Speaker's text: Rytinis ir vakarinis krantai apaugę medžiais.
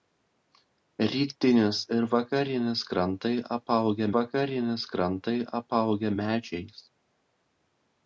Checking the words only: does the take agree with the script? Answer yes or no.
no